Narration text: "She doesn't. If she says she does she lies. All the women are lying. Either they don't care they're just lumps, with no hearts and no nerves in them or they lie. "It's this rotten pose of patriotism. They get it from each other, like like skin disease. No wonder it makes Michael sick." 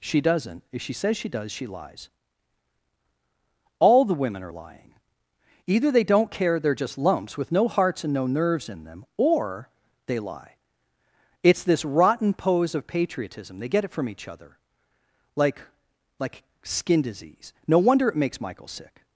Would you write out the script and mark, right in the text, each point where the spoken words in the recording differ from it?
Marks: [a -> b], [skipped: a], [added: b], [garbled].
"She doesn't. If she says she does she lies. All the women are lying. Either they don't care they're just lumps, with no hearts and no nerves in them or they lie. "It's this rotten pose of patriotism. They get it from each other, like like skin disease. No wonder it makes Michael sick."